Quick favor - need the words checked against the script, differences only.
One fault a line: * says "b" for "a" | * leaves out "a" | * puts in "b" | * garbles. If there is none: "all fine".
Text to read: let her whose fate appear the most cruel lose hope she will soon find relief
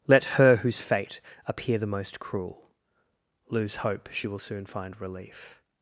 all fine